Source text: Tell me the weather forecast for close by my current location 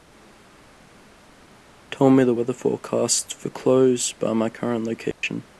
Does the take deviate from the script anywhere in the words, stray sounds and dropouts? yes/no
yes